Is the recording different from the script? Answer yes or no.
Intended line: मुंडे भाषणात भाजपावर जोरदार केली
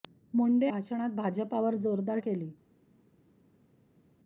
no